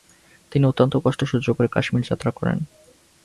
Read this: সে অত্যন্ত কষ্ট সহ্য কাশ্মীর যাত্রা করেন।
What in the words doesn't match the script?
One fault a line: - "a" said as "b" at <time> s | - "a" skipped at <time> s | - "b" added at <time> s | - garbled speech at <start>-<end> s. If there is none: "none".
- "সে" said as "তিনি" at 0.5 s
- "করে" added at 1.5 s